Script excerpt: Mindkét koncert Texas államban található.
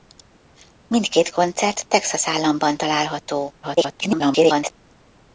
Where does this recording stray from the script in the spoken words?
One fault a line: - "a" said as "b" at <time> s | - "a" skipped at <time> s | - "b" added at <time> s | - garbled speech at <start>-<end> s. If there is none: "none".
- garbled speech at 3.6-4.7 s